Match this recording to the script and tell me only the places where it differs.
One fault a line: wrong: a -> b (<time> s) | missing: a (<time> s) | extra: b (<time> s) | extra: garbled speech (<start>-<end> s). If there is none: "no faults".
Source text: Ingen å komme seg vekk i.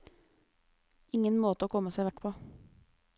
extra: måte (1.4 s)
wrong: i -> på (2.2 s)